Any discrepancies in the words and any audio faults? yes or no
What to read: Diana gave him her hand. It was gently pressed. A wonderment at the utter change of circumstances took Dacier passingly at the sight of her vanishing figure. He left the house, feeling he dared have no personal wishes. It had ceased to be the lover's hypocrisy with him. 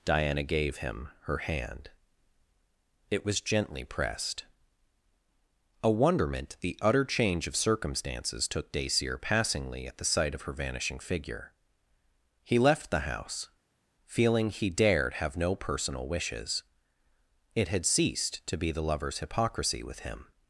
yes